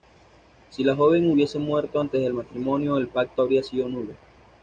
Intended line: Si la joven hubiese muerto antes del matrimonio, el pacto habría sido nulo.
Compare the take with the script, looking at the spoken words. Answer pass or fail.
pass